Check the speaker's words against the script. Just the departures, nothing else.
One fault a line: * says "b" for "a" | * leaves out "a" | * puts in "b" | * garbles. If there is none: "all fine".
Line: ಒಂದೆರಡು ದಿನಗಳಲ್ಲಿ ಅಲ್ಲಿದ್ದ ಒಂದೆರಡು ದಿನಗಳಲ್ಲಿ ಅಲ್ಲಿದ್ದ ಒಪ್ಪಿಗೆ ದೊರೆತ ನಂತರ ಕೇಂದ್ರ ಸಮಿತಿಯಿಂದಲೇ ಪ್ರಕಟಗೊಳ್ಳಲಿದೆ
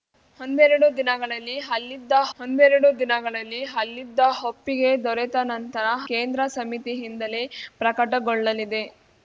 all fine